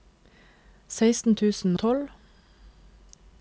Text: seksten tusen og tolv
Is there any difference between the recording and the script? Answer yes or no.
yes